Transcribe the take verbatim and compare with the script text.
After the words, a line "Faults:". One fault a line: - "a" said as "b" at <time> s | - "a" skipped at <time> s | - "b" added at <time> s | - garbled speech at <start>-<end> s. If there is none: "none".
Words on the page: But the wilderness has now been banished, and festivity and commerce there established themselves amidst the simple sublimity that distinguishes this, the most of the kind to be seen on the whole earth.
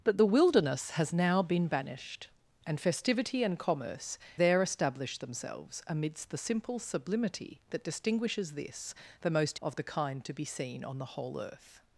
But the wilderness has now been banished, and festivity and commerce there established themselves amidst the simple sublimity that distinguishes this, the most of the kind to be seen on the whole earth.
Faults:
none